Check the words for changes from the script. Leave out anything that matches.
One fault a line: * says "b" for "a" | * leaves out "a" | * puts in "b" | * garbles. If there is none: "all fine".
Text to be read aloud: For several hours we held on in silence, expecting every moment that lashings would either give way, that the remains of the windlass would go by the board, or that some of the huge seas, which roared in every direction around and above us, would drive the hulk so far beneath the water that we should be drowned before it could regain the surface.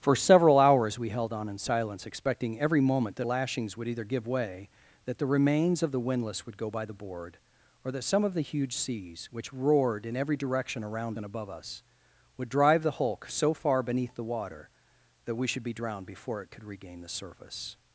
all fine